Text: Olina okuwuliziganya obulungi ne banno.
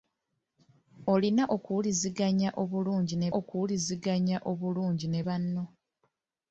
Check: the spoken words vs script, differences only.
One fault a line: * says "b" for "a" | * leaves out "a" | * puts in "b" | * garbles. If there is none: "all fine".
* puts in "okuwuliziganya obulungi ne"